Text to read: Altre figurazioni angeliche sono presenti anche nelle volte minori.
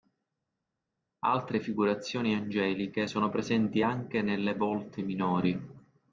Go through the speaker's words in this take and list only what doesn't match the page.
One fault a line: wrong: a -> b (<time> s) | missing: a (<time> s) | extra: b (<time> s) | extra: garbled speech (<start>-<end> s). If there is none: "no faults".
no faults